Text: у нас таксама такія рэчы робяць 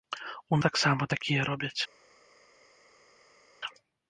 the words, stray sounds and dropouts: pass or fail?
fail